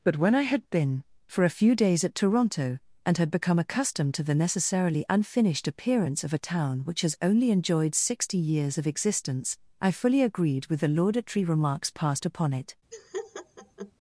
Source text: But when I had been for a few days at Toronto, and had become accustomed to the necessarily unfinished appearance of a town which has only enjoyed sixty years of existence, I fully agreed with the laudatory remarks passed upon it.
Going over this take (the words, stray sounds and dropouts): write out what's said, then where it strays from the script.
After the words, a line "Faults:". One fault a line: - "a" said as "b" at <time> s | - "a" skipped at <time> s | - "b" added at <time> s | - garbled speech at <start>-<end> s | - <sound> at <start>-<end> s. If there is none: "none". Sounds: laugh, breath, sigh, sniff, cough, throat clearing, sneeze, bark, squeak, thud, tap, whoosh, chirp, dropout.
But when I had been for a few days at Toronto, and had become accustomed to the necessarily unfinished appearance of a town which has only enjoyed sixty years of existence, I fully agreed with the laudatory remarks passed upon it.
Faults:
- laugh at 12.9-13.9 s